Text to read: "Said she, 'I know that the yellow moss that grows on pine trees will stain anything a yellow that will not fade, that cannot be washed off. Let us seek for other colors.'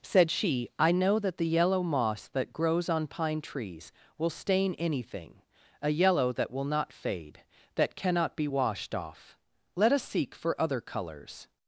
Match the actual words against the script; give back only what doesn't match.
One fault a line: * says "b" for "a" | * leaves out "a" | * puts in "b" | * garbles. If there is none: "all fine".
all fine